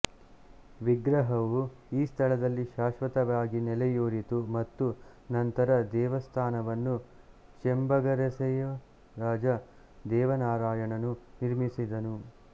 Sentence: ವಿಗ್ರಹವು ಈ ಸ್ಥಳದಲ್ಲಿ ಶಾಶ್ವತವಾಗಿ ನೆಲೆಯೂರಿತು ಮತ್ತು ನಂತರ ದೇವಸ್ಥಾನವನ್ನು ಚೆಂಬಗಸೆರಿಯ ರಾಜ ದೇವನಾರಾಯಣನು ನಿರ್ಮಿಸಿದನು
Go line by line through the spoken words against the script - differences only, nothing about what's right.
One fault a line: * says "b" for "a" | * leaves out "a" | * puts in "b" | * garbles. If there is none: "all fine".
all fine